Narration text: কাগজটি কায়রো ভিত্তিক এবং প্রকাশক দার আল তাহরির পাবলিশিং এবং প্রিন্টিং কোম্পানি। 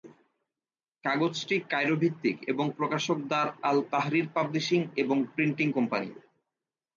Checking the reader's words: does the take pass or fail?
pass